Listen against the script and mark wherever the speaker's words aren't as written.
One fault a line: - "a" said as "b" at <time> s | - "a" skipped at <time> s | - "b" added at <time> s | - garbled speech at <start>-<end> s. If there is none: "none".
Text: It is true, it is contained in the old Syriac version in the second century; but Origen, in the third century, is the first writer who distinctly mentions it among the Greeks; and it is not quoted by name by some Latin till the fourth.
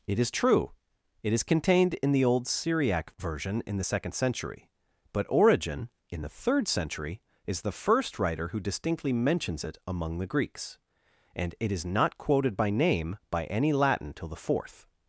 - "some" said as "any" at 13.4 s